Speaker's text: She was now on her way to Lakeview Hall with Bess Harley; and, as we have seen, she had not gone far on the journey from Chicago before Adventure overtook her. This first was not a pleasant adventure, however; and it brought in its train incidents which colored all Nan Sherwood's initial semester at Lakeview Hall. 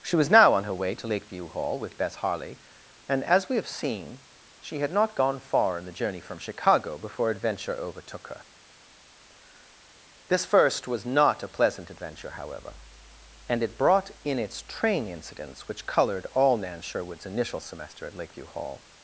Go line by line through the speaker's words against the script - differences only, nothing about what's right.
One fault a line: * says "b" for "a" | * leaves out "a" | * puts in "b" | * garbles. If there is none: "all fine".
* says "in" for "on"